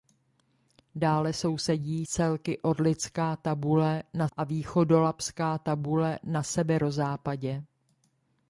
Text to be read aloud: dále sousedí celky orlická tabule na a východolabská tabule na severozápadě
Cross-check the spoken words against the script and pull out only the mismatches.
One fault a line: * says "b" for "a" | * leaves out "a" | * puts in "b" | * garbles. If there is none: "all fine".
all fine